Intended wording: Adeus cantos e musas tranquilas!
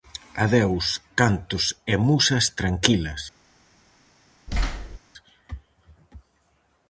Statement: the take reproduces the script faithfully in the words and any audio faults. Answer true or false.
false